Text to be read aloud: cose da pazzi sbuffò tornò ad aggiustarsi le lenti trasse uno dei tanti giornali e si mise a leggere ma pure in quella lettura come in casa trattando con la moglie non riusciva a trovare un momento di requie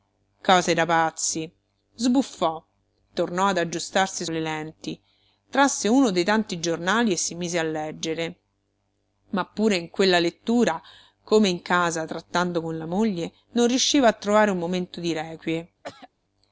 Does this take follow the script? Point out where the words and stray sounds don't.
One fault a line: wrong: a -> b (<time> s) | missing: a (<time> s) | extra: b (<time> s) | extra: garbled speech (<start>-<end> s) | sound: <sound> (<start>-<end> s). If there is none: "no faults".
sound: throat clearing (15.8-16.1 s)